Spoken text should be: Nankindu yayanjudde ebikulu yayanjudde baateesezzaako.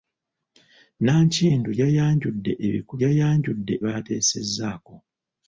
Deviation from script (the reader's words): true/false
false